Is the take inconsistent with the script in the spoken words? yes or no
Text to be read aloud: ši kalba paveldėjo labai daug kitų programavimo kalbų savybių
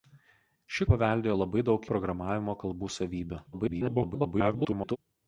yes